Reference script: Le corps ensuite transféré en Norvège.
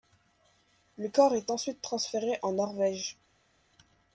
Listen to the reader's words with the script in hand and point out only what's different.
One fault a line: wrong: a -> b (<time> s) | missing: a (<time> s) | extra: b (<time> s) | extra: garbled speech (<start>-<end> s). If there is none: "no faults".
extra: est (1.4 s)